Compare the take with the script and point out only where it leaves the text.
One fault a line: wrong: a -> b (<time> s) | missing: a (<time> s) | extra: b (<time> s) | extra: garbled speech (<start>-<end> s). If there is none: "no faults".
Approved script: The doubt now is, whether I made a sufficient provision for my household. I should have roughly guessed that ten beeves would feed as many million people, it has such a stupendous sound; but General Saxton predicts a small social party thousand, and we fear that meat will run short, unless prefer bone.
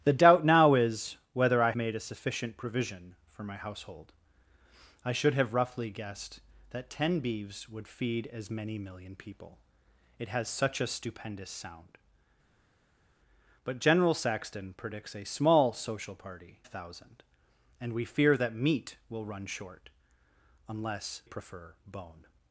no faults